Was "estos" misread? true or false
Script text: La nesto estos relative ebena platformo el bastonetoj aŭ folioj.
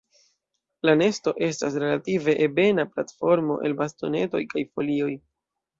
true